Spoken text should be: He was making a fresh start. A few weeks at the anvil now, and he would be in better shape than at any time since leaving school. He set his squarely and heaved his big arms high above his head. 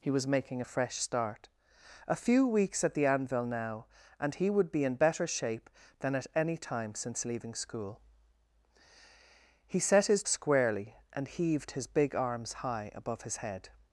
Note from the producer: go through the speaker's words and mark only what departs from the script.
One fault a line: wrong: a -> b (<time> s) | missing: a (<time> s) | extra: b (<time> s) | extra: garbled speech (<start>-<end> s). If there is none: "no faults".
no faults